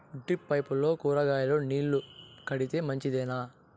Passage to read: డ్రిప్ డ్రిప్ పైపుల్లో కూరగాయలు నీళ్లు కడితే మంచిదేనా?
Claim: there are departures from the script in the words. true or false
true